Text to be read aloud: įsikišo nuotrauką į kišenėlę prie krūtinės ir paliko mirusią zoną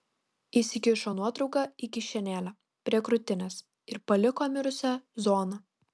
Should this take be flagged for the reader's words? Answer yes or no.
no